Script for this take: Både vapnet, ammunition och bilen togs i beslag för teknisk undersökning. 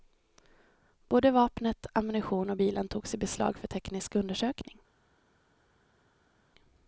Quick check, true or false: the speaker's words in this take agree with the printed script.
true